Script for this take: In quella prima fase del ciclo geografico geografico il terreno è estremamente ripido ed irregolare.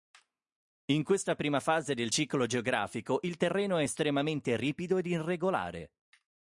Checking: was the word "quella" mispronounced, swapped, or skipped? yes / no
yes